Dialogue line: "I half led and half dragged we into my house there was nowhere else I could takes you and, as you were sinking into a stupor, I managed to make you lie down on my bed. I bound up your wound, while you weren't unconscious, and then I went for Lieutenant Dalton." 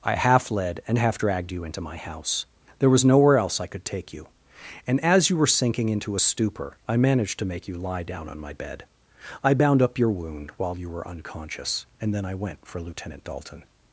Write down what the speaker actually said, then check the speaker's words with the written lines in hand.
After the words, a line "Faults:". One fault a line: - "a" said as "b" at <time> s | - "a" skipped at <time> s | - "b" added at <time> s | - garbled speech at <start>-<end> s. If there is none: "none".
"I half led and half dragged you into my house there was nowhere else I could take you and, as you were sinking into a stupor, I managed to make you lie down on my bed. I bound up your wound, while you were unconscious, and then I went for Lieutenant Dalton."
Faults:
- "we" said as "you" at 1.5 s
- "takes" said as "take" at 3.8 s
- "weren't" said as "were" at 10.9 s